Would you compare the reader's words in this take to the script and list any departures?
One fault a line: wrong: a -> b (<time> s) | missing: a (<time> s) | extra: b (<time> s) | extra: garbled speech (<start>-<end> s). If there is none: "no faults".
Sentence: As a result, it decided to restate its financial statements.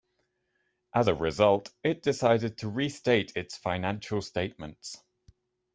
no faults